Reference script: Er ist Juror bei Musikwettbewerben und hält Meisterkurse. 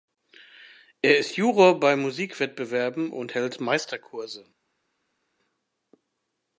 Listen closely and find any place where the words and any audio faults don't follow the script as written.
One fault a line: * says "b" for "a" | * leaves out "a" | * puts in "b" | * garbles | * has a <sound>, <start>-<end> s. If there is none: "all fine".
all fine